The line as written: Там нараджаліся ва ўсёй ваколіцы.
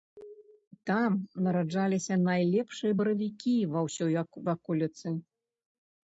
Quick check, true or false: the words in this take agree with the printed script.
false